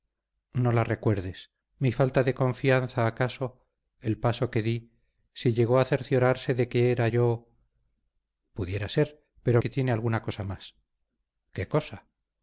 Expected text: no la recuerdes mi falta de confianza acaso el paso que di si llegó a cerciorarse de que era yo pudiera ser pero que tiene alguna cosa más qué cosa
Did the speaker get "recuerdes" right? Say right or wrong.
right